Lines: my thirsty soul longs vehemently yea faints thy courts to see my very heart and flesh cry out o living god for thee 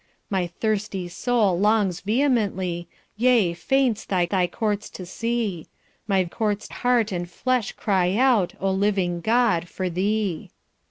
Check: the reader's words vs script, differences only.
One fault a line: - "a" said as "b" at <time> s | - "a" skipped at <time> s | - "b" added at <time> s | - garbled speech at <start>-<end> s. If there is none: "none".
- "thy" added at 4.2 s
- "very" said as "courts" at 6.2 s